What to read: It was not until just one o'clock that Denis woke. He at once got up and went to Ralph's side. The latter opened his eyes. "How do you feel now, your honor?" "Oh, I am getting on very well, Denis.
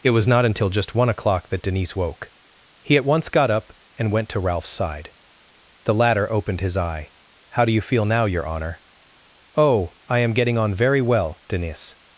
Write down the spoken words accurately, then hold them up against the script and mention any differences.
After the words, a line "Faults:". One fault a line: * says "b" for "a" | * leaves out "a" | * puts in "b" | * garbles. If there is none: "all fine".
It was not until just one o'clock that Denis woke. He at once got up and went to Ralph's side. The latter opened his eye. "How do you feel now, your honor?" "Oh, I am getting on very well, Denis.
Faults:
* says "eye" for "eyes"